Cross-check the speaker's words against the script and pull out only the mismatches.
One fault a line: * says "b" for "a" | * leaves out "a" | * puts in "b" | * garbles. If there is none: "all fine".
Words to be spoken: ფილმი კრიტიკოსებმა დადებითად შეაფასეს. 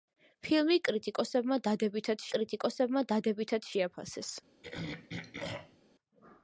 * puts in "კრიტიკოსებმა დადებითად"